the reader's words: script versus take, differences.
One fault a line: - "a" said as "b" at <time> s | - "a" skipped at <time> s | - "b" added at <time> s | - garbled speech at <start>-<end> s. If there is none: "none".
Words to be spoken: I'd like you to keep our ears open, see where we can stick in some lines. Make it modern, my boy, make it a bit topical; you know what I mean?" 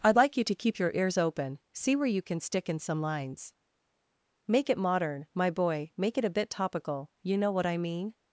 - "our" said as "your" at 0.8 s
- "we" said as "you" at 2.1 s